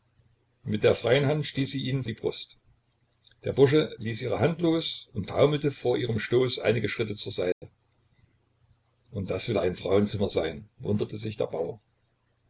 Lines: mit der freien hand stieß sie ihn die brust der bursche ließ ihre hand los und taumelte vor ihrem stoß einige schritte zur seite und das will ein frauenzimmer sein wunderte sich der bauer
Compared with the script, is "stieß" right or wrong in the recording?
right